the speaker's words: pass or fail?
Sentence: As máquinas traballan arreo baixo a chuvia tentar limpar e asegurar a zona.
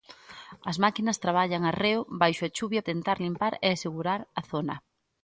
pass